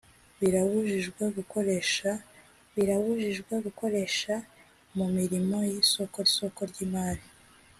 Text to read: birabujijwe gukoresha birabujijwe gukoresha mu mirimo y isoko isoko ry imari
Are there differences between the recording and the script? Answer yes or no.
no